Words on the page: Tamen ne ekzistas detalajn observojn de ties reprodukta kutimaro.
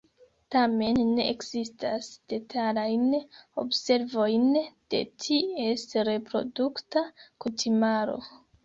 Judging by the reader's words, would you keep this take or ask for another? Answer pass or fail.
pass